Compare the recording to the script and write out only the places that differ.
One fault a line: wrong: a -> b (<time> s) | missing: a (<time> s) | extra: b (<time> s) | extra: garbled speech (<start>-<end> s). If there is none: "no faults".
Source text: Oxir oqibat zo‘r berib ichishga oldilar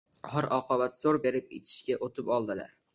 extra: o‘tib (2.1 s)